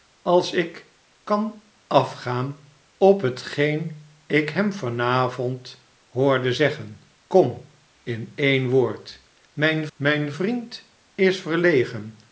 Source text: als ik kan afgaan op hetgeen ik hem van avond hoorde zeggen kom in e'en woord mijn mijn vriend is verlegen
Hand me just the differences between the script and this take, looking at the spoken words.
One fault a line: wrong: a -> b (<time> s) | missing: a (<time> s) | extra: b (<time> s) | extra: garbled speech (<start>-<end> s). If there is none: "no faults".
no faults